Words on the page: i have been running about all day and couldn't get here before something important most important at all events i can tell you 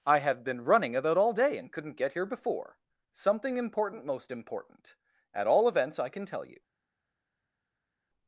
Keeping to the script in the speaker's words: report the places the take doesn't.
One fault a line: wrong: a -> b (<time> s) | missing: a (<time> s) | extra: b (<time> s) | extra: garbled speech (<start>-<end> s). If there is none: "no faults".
no faults